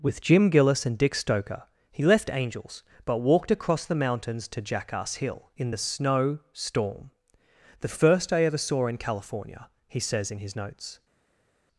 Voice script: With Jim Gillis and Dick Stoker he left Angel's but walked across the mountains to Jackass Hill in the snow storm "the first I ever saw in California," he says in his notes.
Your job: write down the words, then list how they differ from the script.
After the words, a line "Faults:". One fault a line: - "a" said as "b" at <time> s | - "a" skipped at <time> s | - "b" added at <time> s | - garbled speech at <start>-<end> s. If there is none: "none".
With Jim Gillis and Dick Stoker he left Angel's but walked across the mountains to Jackass Hill in the snow storm "the first I ever saw in California," he says in his notes.
Faults:
none